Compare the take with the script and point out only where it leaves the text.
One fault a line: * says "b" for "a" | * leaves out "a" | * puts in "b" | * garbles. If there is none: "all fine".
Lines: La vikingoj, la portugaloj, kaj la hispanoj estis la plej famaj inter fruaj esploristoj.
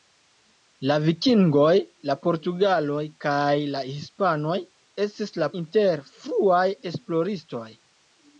* leaves out "plej famaj"